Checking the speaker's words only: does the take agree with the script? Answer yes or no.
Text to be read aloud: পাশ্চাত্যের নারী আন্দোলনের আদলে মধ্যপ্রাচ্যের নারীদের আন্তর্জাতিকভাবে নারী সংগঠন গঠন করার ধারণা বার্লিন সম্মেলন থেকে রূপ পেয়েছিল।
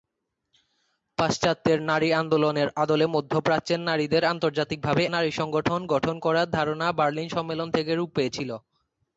yes